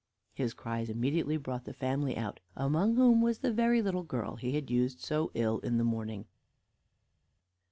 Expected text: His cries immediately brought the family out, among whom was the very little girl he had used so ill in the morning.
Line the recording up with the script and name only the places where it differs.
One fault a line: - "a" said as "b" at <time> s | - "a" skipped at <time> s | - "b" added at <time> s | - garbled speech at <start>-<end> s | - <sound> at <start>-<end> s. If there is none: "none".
none